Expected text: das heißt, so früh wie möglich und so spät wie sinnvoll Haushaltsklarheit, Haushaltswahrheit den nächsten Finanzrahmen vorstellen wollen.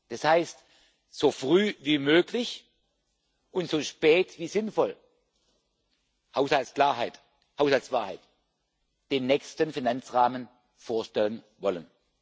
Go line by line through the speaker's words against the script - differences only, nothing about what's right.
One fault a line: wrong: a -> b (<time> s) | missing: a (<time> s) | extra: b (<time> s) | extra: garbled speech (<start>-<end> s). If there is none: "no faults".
no faults